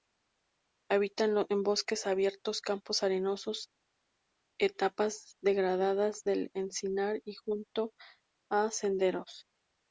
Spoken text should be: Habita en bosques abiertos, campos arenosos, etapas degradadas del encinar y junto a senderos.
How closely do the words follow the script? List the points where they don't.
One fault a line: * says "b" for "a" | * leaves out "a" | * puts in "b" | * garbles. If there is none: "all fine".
all fine